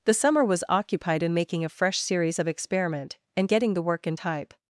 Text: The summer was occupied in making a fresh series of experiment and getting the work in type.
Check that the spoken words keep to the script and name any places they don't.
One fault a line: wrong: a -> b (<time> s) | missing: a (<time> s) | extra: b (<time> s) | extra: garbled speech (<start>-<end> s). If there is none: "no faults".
no faults